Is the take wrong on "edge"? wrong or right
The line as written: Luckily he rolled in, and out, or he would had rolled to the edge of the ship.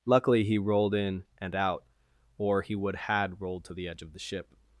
right